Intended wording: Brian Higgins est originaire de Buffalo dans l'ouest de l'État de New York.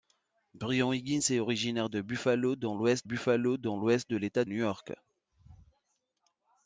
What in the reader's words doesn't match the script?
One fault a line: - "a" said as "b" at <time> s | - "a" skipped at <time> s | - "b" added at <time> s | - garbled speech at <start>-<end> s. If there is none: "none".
- "Buffalo dans l'ouest" added at 3.0 s
- "de" skipped at 4.4 s